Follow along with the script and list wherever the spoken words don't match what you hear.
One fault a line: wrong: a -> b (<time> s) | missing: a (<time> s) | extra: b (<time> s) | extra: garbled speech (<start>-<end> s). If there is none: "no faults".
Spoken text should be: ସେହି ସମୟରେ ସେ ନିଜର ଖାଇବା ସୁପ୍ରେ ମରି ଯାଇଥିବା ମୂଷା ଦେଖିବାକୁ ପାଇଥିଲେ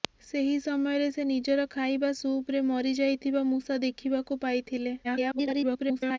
extra: garbled speech (5.0-6.2 s)